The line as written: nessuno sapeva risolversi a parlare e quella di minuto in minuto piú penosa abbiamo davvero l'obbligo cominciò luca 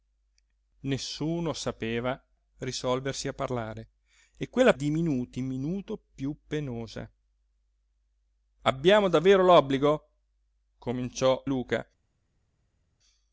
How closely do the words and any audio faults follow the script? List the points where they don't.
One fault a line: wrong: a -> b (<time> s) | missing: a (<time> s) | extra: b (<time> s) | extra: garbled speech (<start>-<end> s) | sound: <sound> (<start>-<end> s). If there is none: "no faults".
no faults